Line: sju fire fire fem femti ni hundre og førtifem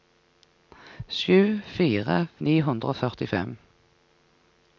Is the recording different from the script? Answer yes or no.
yes